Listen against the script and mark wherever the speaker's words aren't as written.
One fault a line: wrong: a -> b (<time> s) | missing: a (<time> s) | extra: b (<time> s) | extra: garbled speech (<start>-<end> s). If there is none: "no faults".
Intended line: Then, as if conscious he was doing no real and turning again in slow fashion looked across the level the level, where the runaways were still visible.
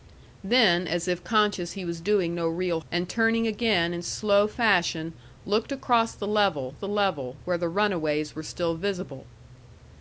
no faults